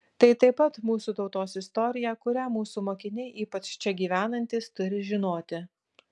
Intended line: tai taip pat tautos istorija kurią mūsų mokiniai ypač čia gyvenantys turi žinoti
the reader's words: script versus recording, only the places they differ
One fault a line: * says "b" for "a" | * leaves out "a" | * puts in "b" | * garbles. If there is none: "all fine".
* puts in "mūsų"